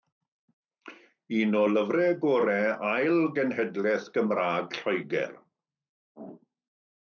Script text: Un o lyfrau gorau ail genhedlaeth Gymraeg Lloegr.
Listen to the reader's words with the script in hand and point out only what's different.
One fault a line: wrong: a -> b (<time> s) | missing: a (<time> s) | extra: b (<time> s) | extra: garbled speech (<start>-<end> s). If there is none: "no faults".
no faults